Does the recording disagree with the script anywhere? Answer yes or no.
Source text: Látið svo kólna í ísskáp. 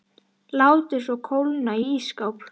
no